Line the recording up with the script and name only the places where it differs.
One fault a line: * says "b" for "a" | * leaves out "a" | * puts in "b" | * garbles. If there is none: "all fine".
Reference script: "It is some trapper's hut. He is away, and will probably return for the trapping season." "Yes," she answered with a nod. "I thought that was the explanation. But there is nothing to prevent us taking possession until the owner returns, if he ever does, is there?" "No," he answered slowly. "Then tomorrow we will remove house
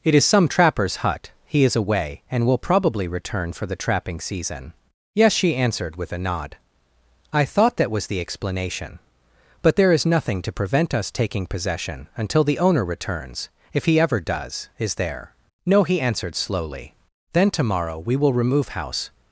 all fine